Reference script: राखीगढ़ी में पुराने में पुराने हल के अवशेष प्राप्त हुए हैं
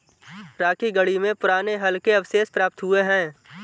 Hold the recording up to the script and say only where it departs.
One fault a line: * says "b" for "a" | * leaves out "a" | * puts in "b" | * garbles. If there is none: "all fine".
* leaves out "में पुराने"